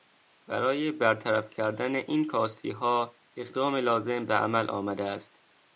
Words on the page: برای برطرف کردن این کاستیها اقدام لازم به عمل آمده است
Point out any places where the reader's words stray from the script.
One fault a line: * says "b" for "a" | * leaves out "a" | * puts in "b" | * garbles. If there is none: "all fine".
all fine